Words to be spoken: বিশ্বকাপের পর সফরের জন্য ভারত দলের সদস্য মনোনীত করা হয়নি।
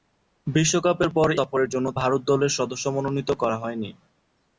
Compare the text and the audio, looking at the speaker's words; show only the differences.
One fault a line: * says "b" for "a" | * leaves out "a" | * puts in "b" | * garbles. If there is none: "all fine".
all fine